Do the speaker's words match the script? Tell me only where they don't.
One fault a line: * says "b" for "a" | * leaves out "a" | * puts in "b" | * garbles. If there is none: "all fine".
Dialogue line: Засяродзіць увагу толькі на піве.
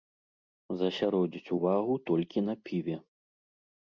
all fine